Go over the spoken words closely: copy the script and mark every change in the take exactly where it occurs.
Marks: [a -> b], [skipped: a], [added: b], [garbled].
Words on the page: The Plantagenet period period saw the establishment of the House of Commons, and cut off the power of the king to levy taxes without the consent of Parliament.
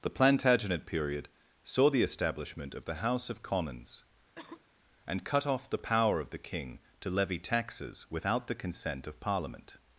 The Plantagenet period [skipped: period] saw the establishment of the House of Commons, and cut off the power of the king to levy taxes without the consent of Parliament.